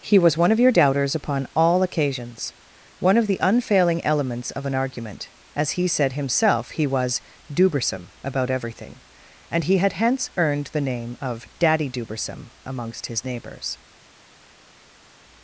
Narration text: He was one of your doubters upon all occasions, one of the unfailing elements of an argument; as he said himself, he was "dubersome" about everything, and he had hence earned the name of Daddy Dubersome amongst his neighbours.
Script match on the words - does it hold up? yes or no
yes